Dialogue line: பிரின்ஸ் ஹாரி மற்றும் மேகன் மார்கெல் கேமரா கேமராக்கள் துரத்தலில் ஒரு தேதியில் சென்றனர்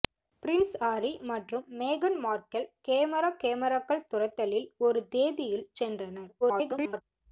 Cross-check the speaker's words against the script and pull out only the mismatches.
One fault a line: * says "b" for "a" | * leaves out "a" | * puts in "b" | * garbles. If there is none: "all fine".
* garbles